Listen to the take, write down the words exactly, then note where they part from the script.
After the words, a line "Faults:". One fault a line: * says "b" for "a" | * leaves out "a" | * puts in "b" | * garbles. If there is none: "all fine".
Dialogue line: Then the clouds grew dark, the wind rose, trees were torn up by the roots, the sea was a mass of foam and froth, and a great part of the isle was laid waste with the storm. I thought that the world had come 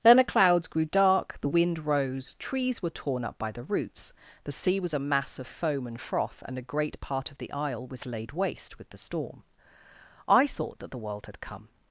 Then the clouds grew dark, the wind rose, trees were torn up by the roots, the sea was a mass of foam and froth, and a great part of the isle was laid waste with the storm. I thought that the world had come
Faults:
all fine